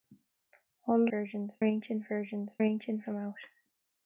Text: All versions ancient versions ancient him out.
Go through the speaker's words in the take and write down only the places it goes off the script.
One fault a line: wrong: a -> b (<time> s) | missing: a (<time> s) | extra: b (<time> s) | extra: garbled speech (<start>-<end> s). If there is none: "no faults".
no faults